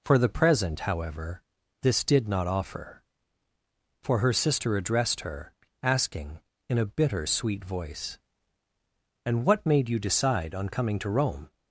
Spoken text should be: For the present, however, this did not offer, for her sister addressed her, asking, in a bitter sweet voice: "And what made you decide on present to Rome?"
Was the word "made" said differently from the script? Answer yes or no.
no